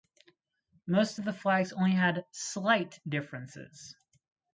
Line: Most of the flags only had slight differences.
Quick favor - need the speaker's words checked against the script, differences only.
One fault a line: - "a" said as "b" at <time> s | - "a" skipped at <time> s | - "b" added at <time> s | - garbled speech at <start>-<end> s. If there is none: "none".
none